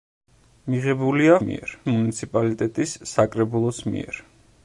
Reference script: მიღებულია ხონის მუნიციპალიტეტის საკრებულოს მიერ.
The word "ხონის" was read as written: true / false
false